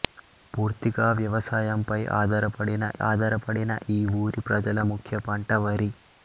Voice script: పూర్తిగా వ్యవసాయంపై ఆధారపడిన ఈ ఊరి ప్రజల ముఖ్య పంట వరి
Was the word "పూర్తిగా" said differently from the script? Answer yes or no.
no